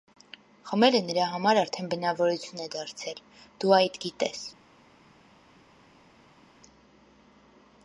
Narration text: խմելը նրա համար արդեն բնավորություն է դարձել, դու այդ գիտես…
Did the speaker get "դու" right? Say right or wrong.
right